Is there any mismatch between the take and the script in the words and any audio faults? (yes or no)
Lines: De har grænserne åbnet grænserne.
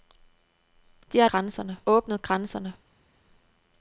no